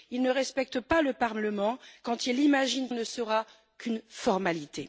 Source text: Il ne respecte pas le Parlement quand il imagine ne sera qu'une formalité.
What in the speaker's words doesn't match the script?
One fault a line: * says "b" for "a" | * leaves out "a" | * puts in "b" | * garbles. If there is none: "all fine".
all fine